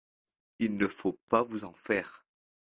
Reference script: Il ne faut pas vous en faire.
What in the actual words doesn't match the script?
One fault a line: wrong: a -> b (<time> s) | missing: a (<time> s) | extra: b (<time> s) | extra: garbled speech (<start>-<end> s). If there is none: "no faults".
no faults